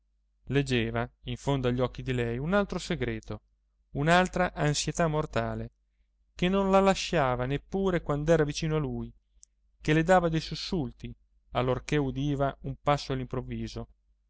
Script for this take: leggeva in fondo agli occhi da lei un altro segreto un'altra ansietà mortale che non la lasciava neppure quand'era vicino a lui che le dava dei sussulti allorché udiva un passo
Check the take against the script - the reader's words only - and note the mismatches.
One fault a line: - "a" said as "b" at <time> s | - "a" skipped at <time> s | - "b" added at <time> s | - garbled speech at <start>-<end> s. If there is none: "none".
- "da" said as "di" at 2.0 s